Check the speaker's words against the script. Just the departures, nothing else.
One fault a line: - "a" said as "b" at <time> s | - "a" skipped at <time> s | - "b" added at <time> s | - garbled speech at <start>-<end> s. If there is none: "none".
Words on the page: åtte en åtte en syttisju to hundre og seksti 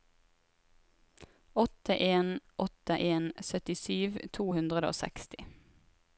none